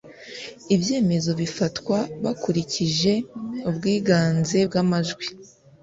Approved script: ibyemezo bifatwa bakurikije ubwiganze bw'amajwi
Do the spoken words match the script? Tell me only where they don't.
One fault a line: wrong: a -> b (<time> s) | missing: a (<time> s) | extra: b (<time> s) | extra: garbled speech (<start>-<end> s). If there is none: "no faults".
no faults